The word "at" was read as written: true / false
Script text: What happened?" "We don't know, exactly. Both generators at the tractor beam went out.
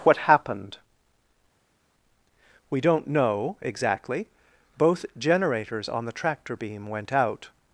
false